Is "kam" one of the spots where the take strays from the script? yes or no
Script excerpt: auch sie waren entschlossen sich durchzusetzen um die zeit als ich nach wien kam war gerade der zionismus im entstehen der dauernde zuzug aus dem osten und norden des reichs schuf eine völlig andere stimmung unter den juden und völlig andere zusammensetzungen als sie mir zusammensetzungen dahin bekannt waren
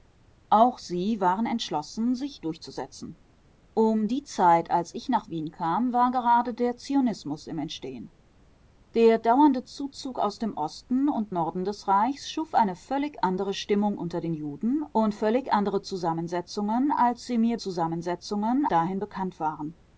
no